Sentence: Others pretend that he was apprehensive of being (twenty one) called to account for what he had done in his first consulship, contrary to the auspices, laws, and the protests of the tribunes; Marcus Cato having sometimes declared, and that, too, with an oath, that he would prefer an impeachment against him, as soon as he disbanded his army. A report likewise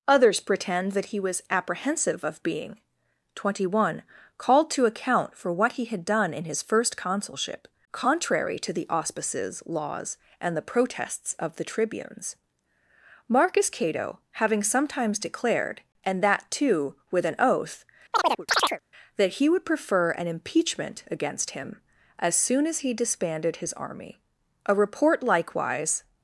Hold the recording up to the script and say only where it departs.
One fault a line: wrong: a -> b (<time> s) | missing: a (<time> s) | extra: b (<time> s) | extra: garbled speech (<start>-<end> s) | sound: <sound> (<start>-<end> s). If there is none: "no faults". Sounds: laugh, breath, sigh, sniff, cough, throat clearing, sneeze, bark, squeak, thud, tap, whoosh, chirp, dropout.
sound: chirp (18.1-18.8 s)